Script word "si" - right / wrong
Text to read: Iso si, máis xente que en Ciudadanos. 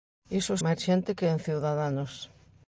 wrong